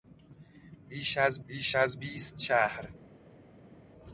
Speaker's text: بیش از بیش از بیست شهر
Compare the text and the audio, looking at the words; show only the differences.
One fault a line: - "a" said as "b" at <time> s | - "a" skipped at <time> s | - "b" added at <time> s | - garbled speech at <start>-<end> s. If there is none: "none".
none